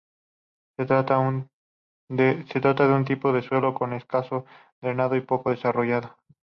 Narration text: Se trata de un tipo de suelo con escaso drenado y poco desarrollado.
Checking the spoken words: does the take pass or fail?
pass